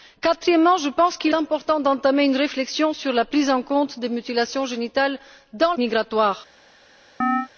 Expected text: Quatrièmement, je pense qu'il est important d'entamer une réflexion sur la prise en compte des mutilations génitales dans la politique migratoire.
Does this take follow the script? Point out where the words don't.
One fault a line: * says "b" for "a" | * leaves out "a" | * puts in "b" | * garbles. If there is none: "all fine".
* leaves out "est"
* leaves out "la politique"